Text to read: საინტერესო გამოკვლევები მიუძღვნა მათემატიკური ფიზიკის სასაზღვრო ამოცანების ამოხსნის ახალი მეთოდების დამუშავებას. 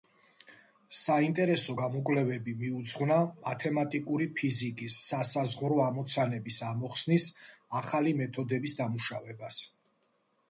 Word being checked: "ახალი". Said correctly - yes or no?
yes